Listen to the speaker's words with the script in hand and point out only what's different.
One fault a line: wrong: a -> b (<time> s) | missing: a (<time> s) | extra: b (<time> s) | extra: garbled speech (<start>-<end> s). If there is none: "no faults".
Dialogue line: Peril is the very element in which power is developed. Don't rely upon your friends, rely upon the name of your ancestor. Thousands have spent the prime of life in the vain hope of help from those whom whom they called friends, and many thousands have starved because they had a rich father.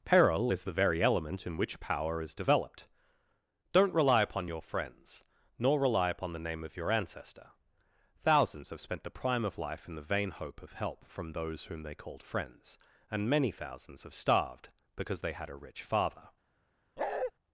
extra: nor (5.6 s)
missing: whom (11.8 s)